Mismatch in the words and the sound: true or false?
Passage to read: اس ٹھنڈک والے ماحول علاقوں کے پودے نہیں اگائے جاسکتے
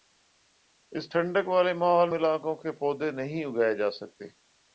false